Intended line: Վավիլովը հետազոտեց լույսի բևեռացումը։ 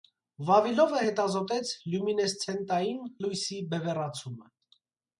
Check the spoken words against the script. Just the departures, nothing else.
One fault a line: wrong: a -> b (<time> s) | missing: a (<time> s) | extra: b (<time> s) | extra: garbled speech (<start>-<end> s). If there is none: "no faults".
extra: լյումինեսցենտային (1.9 s)